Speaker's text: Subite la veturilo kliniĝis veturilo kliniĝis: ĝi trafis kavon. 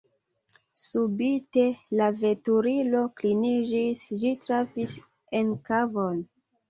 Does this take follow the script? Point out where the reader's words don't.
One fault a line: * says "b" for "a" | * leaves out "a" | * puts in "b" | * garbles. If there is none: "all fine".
* leaves out "veturilo kliniĝis"
* puts in "en"